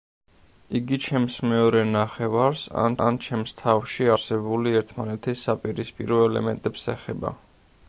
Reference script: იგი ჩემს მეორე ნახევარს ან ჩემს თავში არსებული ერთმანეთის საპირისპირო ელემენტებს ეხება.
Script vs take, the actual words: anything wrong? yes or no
yes